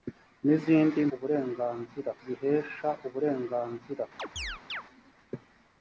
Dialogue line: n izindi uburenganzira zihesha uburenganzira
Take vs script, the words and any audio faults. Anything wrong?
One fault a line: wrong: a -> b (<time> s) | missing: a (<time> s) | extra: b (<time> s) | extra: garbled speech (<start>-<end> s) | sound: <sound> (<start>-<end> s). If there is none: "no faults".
sound: chirp (4.2-4.8 s)